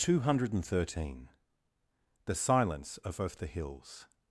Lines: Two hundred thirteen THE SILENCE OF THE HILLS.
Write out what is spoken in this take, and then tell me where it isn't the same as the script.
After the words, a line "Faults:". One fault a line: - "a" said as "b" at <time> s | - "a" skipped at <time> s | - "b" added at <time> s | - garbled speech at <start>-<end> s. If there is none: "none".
Two hundred thirteen THE SILENCE OF OF THE HILLS.
Faults:
- "OF" added at 3.2 s